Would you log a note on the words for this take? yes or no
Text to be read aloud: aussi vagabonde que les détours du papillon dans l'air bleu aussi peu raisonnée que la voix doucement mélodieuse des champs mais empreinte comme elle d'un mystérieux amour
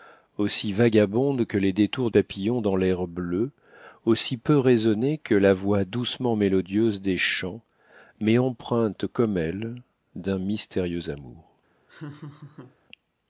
yes